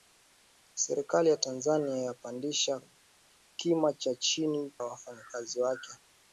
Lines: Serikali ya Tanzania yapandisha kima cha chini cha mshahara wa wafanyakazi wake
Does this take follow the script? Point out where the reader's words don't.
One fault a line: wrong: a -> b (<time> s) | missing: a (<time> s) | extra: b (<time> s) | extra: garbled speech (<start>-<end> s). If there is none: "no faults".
missing: cha mshahara (4.7 s)